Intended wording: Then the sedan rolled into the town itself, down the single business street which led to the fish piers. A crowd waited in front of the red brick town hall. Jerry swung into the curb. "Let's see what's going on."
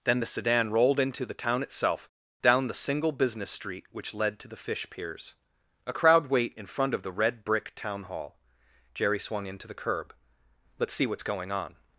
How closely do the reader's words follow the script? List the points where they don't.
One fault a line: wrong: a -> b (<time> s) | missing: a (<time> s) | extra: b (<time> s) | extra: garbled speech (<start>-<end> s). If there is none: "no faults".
wrong: waited -> wait (6.3 s)